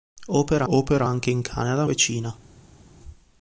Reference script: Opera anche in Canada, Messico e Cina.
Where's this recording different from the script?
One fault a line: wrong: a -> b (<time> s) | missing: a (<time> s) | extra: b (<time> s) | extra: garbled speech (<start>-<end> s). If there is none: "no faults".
extra: opera (0.7 s)
missing: Messico (1.8 s)